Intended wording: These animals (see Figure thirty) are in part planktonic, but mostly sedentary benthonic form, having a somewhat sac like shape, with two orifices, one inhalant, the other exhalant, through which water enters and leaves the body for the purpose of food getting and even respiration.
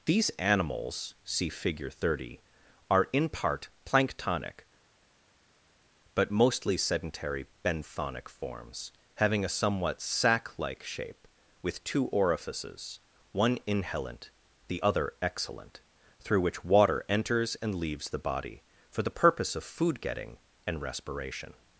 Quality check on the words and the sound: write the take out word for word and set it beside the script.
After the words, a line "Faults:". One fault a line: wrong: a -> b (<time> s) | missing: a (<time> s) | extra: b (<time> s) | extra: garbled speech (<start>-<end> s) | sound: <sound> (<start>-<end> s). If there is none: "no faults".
These animals (see Figure thirty) are in part planktonic, but mostly sedentary benthonic forms, having a somewhat sac like shape, with two orifices, one inhalant, the other exhalant, through which water enters and leaves the body for the purpose of food getting and respiration.
Faults:
wrong: form -> forms (8.3 s)
missing: even (20.8 s)